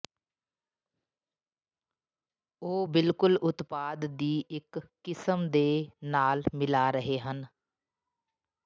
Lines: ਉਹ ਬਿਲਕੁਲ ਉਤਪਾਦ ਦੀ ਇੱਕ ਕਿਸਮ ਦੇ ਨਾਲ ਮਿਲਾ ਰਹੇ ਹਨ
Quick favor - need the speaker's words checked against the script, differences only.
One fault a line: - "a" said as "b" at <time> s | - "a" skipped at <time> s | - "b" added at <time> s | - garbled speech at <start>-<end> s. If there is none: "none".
none